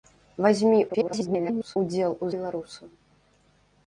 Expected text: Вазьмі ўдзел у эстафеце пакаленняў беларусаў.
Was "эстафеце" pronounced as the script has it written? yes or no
no